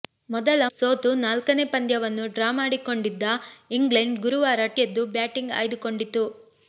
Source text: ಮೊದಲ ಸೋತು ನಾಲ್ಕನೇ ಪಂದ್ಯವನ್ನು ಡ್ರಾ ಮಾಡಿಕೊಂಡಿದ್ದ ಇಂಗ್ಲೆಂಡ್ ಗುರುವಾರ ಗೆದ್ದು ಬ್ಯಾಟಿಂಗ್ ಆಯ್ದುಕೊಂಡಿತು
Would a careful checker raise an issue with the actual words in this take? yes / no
no